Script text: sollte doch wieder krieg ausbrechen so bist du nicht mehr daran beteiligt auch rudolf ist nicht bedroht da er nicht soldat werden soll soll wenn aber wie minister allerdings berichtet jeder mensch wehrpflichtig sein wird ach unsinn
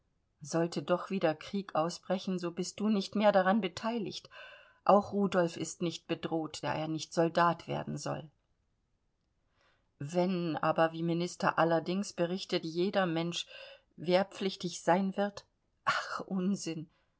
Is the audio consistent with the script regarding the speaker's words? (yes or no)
no